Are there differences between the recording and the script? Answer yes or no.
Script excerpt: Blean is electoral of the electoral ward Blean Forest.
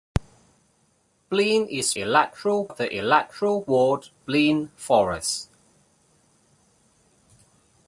no